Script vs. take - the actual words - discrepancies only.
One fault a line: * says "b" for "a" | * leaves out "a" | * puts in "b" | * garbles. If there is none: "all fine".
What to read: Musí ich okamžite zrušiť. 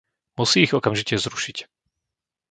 all fine